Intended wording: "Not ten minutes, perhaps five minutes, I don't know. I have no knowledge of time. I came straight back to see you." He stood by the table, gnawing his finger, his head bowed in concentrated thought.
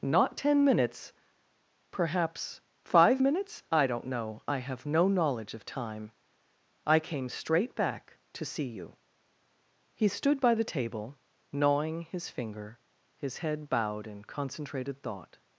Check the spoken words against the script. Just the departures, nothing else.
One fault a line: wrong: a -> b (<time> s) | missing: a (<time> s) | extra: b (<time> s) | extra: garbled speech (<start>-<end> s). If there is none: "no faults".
no faults